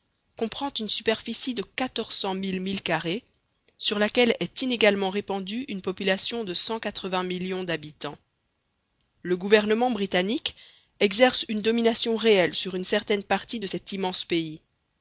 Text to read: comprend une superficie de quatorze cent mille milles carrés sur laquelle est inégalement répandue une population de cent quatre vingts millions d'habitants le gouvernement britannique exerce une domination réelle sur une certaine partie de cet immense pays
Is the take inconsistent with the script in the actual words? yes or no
no